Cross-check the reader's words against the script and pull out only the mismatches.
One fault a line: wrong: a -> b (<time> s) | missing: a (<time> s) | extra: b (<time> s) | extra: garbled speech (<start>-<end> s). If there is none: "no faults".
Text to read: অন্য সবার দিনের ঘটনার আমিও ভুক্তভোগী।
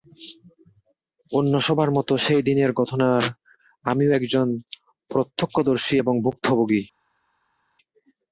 extra: মতো সেই (1.9 s)
extra: একজন প্রত্যক্ষদর্শী এবং (4.1 s)